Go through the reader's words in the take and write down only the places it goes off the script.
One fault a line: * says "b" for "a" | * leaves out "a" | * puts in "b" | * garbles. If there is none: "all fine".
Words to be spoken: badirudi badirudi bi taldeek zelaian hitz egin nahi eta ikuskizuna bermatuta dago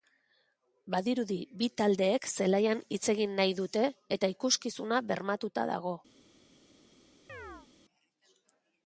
* leaves out "badirudi"
* puts in "dute"